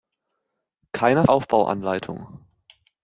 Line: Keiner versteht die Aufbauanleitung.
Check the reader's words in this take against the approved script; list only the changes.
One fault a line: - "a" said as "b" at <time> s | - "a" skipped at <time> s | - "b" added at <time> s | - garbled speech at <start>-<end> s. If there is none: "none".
- "versteht die" skipped at 1.3 s